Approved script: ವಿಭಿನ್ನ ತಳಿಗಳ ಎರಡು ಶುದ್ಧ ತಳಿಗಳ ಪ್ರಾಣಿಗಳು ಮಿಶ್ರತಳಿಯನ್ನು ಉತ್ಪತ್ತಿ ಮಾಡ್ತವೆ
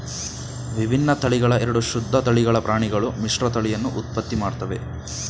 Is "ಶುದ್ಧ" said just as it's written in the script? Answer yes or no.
yes